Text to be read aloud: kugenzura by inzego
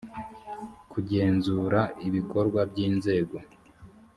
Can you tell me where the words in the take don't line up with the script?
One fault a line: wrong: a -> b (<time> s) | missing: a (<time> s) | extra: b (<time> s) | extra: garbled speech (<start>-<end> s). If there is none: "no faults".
extra: ibikorwa (2.1 s)